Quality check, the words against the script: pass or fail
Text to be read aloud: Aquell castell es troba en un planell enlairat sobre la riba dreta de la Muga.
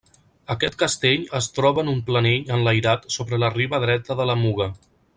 fail